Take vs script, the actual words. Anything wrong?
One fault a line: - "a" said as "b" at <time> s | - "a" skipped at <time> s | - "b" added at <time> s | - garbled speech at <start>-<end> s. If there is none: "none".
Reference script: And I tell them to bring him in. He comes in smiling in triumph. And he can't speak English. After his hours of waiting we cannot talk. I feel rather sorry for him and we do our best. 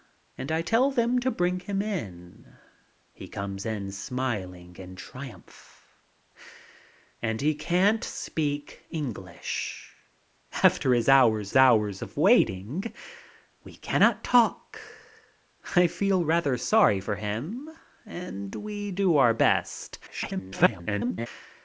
- "hours" added at 11.5 s
- garbled speech at 20.1-21.3 s